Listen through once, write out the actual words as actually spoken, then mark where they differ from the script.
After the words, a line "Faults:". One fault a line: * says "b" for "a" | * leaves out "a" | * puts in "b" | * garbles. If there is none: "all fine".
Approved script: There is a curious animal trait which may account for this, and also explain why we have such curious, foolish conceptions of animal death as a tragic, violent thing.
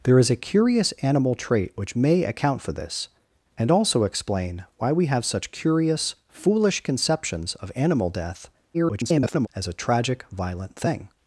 There is a curious animal trait which may account for this, and also explain why we have such curious, foolish conceptions of animal death [garbled] as a tragic, violent thing.
Faults:
* garbles